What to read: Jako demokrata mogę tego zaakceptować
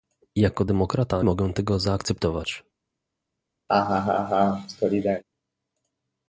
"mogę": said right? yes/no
yes